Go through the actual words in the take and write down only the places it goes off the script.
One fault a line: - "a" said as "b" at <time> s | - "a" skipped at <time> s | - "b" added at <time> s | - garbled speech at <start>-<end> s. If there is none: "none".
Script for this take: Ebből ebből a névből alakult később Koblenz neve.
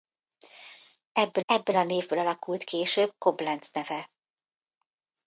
none